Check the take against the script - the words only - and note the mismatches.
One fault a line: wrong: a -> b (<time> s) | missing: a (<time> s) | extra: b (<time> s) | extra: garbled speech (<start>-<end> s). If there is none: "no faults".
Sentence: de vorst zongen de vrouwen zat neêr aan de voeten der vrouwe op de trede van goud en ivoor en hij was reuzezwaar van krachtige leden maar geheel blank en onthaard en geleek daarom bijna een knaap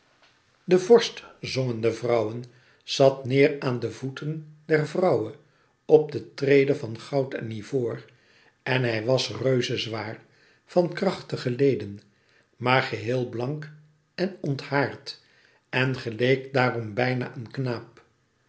no faults